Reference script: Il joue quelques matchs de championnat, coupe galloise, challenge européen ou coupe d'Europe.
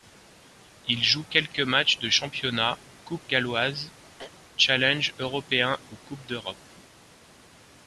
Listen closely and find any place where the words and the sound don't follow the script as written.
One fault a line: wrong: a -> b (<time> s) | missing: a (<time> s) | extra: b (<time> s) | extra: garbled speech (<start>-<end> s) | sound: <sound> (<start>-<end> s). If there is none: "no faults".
sound: throat clearing (4.2-4.3 s)